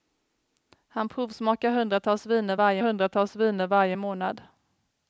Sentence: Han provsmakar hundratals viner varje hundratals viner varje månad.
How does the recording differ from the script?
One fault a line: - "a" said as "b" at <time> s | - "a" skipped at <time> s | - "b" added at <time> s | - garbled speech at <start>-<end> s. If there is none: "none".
none